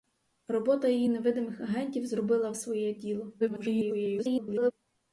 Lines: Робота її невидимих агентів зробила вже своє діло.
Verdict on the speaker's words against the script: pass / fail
fail